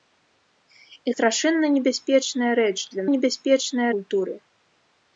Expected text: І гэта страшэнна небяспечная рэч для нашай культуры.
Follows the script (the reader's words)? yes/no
no